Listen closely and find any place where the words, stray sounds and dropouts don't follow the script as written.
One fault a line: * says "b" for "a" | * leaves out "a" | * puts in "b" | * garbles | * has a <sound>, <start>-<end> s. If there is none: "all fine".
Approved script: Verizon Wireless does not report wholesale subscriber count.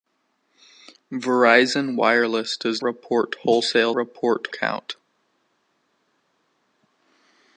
* leaves out "not"
* says "report" for "subscriber"